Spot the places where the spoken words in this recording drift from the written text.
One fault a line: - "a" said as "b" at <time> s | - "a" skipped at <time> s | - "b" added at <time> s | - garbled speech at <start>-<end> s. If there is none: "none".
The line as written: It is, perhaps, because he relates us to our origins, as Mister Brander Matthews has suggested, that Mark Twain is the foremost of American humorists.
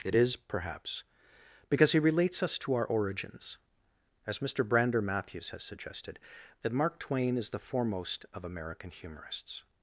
none